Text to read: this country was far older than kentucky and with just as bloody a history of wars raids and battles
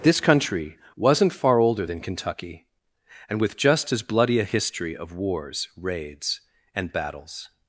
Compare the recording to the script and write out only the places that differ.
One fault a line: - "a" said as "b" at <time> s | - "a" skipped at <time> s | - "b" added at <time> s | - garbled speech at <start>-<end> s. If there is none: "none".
- "was" said as "wasn't" at 0.9 s